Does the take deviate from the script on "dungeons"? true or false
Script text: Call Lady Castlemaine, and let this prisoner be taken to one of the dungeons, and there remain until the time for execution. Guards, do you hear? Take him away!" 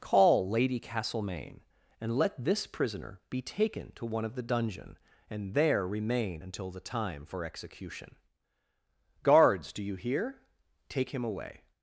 true